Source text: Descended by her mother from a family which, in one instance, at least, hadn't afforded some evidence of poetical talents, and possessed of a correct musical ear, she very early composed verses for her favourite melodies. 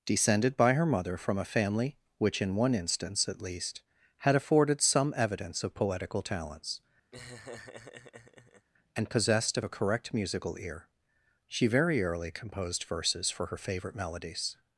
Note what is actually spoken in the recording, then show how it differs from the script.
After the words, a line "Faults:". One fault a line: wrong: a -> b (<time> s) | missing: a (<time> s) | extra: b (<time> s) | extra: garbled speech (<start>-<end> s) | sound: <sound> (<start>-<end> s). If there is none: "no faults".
Descended by her mother from a family which, in one instance, at least, had afforded some evidence of poetical talents, and possessed of a correct musical ear, she very early composed verses for her favourite melodies.
Faults:
wrong: hadn't -> had (4.2 s)
sound: laugh (7.1-8.7 s)